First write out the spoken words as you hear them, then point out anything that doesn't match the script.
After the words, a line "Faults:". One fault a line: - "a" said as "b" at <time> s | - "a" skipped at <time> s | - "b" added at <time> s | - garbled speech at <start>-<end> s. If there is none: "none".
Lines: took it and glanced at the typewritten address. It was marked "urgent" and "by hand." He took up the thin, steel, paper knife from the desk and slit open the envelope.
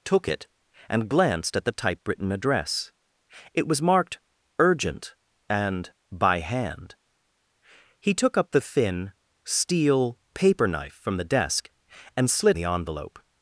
took it and glanced at the typewritten address. It was marked "urgent" and "by hand." He took up the thin, steel, paper knife from the desk and slit the envelope.
Faults:
- "open" skipped at 12.6 s